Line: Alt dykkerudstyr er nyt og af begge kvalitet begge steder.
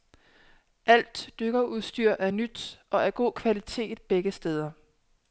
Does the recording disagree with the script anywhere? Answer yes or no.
yes